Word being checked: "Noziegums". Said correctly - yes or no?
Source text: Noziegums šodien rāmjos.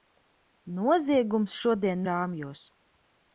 yes